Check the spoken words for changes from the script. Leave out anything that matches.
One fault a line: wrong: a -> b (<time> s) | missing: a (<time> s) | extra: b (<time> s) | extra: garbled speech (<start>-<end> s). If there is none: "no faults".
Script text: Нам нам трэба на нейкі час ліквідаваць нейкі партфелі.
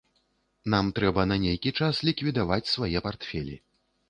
missing: нам (0.9 s)
wrong: нейкі -> свае (2.8 s)